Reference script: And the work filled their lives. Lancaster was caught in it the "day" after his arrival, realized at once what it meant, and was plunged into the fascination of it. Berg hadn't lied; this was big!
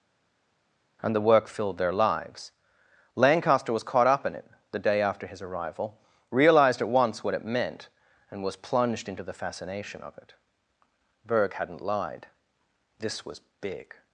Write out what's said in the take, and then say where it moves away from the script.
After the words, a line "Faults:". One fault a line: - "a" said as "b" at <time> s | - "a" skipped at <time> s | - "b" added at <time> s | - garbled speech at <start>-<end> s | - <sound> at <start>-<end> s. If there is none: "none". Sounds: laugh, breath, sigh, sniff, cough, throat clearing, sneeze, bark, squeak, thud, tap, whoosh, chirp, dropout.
And the work filled their lives. Lancaster was caught up in it the "day" after his arrival, realized at once what it meant, and was plunged into the fascination of it. Berg hadn't lied; this was big!
Faults:
- "up" added at 4.1 s